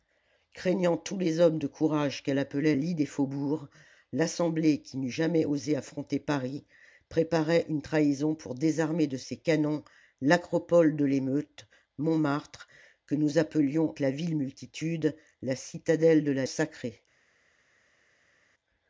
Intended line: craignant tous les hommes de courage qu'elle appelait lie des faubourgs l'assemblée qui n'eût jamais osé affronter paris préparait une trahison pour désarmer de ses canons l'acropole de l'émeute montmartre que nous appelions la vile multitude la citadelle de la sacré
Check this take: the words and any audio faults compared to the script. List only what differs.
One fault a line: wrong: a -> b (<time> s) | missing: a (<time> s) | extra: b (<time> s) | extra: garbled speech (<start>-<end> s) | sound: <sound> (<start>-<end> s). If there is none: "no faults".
no faults